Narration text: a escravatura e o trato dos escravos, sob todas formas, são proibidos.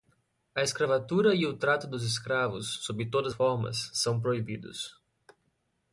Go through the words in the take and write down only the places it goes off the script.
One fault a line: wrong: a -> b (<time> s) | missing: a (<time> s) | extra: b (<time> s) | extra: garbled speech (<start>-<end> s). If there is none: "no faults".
no faults